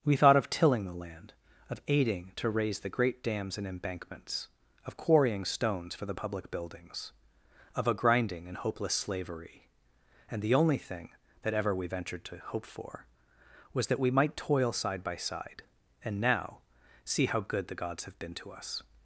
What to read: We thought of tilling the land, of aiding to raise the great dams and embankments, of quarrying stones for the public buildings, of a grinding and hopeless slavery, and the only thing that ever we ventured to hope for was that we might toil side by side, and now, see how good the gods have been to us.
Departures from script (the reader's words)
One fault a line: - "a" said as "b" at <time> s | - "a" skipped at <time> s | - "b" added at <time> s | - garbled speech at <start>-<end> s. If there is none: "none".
none